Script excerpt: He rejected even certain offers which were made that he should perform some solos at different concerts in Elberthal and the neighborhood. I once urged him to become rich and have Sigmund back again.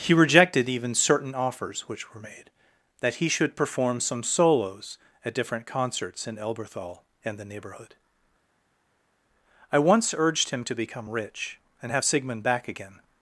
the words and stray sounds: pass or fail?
pass